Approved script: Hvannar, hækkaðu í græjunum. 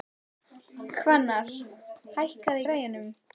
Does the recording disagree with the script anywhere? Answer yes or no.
no